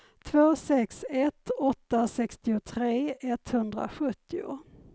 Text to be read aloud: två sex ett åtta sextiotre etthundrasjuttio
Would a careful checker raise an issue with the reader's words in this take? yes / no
no